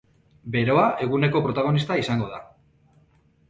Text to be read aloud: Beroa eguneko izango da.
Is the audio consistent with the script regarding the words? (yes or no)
no